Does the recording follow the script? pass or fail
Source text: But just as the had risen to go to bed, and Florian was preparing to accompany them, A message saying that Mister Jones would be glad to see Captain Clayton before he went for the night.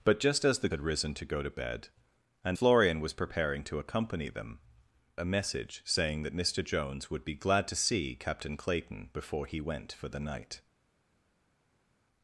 pass